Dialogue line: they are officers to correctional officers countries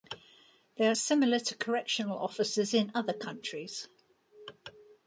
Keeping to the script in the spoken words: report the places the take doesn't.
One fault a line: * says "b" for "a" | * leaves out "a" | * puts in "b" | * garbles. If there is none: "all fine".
* says "similar" for "officers"
* puts in "in other"